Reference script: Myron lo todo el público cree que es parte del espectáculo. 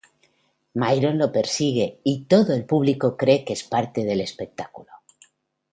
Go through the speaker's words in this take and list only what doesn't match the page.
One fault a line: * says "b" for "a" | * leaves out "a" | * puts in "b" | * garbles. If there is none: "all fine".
* puts in "persigue y"